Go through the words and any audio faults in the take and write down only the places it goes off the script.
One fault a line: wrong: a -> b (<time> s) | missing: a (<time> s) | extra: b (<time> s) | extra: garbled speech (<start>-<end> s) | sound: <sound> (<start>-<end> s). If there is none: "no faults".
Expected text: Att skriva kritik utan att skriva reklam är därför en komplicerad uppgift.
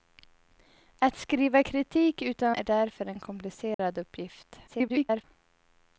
missing: att skriva reklam (2.5 s)
sound: dropout (3.7-3.8 s)
extra: garbled speech (4.7-5.2 s)